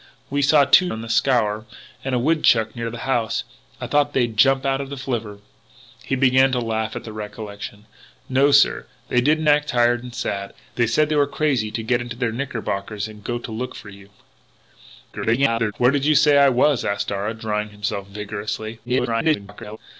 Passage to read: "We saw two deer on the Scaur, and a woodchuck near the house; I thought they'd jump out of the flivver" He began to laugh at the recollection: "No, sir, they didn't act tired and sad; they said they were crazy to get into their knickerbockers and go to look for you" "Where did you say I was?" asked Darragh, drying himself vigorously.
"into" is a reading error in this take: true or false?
false